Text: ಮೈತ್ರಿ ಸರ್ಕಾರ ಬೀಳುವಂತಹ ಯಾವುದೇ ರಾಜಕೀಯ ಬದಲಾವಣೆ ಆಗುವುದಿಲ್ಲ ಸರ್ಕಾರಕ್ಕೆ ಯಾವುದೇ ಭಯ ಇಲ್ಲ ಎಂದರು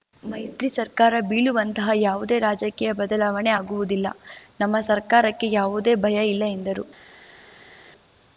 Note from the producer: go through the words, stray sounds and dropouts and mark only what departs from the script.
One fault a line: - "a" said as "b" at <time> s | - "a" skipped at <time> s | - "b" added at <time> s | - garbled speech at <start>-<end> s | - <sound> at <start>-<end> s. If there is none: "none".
- "ನಮ್ಮ" added at 4.6 s